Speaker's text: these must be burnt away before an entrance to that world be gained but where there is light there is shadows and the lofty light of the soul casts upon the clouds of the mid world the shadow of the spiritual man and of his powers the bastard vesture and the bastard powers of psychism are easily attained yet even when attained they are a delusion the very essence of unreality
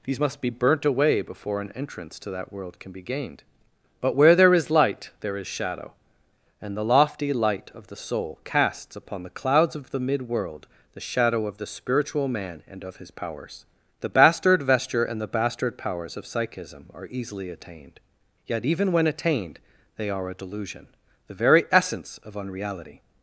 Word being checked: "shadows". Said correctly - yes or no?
no